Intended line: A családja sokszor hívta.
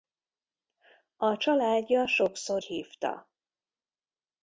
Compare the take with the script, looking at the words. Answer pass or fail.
pass